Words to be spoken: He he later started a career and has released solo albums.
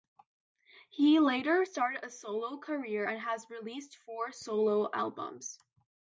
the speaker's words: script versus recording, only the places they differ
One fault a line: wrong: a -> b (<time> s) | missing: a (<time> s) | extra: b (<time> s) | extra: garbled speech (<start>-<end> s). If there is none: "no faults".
missing: he (1.2 s)
extra: solo (2.1 s)
extra: four (4.0 s)